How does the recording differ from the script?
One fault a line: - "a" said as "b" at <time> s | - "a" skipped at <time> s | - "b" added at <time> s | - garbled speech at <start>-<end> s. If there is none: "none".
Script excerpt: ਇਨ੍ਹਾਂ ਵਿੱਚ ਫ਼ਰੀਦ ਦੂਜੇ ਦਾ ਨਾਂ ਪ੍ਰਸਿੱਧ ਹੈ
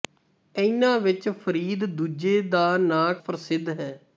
none